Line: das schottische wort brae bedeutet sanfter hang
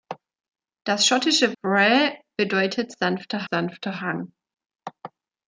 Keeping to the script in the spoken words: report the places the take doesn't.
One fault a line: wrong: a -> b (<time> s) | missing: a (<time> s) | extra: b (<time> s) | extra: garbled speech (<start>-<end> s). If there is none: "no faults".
missing: wort (1.5 s)
extra: sanfter (3.5 s)